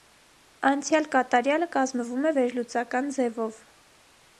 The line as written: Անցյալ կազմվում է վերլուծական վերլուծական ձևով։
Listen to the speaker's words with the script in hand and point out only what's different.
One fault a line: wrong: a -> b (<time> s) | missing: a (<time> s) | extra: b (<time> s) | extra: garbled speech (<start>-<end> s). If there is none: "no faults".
extra: կատարյալը (1.2 s)
missing: վերլուծական (3.1 s)